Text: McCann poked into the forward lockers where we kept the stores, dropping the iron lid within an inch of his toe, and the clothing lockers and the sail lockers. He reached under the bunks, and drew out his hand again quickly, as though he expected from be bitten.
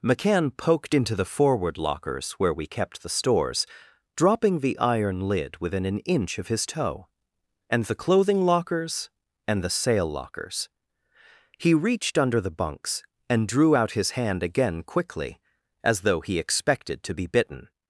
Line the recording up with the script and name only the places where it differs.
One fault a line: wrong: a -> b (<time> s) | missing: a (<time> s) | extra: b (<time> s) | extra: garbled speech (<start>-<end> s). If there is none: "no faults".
wrong: from -> to (17.0 s)